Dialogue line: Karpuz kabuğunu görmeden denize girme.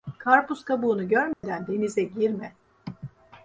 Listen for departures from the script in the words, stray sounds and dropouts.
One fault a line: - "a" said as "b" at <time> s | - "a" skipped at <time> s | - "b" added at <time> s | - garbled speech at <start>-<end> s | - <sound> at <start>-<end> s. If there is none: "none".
- dropout at 1.3-1.4 s